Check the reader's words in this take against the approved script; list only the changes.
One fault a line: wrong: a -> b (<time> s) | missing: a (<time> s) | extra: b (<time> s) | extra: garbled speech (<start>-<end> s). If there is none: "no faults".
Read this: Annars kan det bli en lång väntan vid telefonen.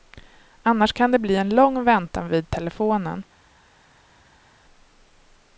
no faults